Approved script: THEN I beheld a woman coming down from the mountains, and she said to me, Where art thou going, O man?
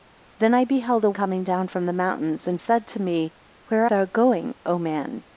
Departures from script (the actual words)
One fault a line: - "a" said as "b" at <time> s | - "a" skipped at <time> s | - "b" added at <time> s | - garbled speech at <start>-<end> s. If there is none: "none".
- "woman" skipped at 1.1 s
- "she" skipped at 2.6 s
- "art" skipped at 3.9 s